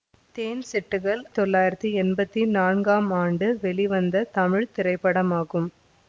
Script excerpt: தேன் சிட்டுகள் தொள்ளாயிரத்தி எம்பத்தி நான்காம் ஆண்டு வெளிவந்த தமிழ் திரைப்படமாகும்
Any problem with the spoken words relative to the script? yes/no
no